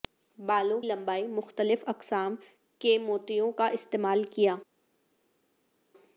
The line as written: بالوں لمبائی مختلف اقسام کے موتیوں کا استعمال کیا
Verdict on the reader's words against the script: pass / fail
pass